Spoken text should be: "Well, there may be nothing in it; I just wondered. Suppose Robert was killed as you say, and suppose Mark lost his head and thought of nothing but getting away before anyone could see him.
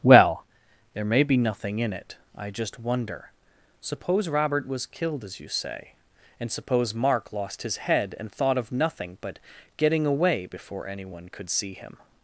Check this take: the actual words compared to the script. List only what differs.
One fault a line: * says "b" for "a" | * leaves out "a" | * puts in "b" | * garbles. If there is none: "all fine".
* says "wonder" for "wondered"